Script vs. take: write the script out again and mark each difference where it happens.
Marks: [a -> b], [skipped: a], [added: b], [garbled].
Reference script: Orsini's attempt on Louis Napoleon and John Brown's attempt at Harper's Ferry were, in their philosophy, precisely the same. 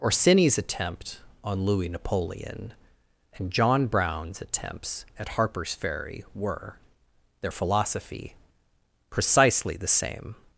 Orsini's attempt on Louis Napoleon and John Brown's [attempt -> attempts] at Harper's Ferry were, [skipped: in] their philosophy, precisely the same.